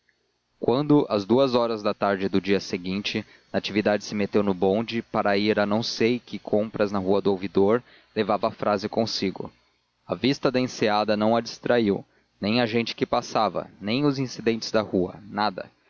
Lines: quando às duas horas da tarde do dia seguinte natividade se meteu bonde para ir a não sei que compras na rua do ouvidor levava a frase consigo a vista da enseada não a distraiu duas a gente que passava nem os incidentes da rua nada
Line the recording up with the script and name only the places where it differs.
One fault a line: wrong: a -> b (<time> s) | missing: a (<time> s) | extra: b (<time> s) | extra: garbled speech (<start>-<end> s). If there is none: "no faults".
extra: no (4.4 s)
wrong: duas -> nem (12.4 s)